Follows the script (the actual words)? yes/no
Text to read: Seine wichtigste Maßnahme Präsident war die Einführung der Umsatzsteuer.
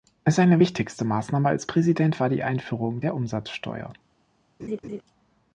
no